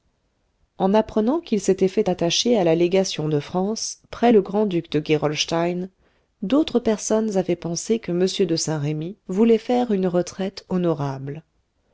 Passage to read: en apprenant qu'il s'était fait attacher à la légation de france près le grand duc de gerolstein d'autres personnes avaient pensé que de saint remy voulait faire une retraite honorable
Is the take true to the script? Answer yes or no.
no